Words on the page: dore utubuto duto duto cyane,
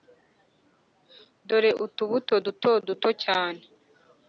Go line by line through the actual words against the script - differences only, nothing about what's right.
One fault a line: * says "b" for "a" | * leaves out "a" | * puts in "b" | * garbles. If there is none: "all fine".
all fine